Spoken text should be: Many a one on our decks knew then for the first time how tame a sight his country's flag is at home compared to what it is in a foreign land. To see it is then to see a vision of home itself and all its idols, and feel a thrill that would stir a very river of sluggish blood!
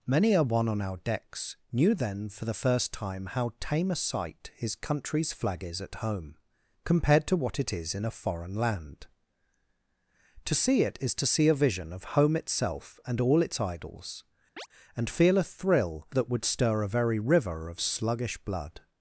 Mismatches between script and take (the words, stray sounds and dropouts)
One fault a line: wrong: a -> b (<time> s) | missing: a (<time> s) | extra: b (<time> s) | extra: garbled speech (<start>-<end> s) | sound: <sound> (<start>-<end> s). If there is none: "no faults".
missing: then (11.1 s)
sound: chirp (14.6-14.7 s)